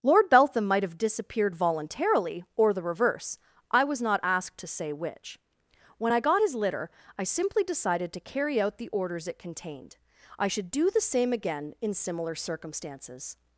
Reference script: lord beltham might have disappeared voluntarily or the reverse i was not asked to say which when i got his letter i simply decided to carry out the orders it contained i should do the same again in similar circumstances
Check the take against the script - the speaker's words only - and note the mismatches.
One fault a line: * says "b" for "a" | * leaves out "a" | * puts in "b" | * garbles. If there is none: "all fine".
* says "litter" for "letter"